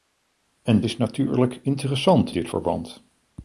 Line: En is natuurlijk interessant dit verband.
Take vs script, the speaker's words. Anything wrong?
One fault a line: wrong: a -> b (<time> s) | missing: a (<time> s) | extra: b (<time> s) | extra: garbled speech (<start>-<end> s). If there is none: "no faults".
no faults